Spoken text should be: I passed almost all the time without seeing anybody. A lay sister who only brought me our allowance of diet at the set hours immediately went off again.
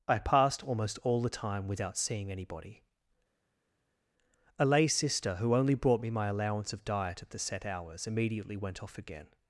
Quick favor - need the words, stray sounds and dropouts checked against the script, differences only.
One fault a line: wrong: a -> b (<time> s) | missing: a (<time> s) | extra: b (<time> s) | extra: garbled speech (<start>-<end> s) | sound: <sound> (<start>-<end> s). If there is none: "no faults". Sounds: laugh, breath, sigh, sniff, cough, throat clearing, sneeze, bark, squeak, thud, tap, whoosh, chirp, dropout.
wrong: our -> my (6.1 s)